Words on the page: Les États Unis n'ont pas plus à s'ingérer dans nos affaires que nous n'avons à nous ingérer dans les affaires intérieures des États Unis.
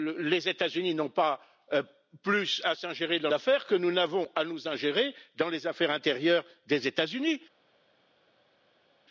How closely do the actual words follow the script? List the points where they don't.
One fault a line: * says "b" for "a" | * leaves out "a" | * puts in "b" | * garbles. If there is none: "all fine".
* leaves out "nos"